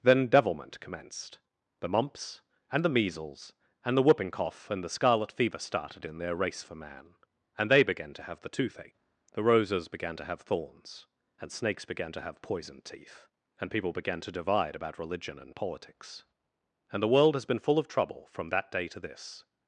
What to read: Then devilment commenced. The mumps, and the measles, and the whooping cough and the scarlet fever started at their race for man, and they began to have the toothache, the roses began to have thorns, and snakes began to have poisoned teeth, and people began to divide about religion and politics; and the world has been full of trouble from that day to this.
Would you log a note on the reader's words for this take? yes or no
yes